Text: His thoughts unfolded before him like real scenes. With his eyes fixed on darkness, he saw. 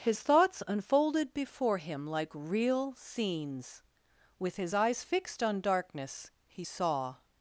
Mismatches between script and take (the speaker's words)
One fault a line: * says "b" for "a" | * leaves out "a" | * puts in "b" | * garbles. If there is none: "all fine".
all fine